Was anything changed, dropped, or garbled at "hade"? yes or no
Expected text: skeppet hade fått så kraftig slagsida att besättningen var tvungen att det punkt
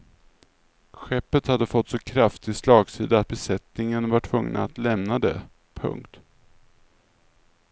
no